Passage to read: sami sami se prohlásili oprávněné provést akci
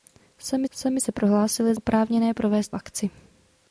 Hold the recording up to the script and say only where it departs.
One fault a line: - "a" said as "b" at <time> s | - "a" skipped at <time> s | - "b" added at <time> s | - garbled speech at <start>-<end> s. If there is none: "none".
none